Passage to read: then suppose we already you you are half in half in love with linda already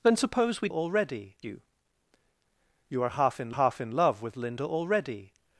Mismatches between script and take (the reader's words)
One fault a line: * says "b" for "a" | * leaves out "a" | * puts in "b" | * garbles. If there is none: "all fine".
all fine